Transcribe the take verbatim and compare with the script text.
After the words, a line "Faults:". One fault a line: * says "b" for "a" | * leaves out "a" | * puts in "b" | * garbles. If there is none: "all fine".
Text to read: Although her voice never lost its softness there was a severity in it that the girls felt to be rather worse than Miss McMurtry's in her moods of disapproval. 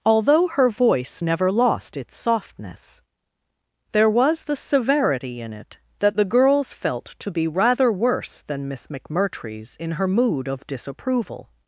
Although her voice never lost its softness there was the severity in it that the girls felt to be rather worse than Miss McMurtry's in her mood of disapproval.
Faults:
* says "the" for "a"
* says "mood" for "moods"